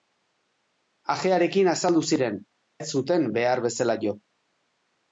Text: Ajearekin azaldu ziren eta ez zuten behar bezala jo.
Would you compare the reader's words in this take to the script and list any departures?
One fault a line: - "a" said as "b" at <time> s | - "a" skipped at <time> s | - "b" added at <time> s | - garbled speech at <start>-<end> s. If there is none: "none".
- "eta" skipped at 2.4 s